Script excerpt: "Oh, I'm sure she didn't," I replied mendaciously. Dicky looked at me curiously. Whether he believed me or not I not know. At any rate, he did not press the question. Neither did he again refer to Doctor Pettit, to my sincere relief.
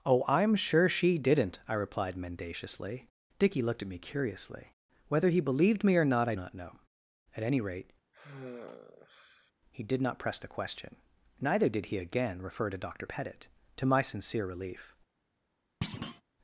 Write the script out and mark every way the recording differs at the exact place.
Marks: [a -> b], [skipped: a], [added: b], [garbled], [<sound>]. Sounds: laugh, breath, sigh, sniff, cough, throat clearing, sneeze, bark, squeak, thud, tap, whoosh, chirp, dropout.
"Oh, I'm sure she didn't," I replied mendaciously. Dicky looked at me curiously. Whether he believed me or not I not know. At any rate, [sigh] he did not press the question. Neither did he again refer to Doctor Pettit, to my sincere relief. [thud]